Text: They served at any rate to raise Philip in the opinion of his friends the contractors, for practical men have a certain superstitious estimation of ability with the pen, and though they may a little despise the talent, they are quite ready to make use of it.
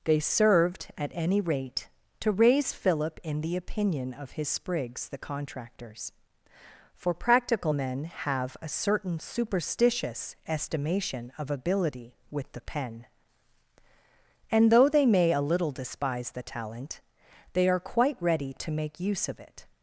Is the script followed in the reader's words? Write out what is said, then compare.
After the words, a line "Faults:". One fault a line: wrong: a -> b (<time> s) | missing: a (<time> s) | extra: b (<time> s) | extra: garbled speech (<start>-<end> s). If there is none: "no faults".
They served at any rate to raise Philip in the opinion of his sprigs the contractors, for practical men have a certain superstitious estimation of ability with the pen, and though they may a little despise the talent, they are quite ready to make use of it.
Faults:
wrong: friends -> sprigs (4.5 s)